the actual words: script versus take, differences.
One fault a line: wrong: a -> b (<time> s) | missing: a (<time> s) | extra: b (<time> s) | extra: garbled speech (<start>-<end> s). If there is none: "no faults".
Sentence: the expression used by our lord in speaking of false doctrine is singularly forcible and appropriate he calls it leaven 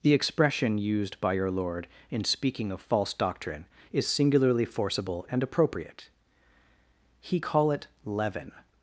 wrong: our -> your (1.3 s)
wrong: calls -> call (7.4 s)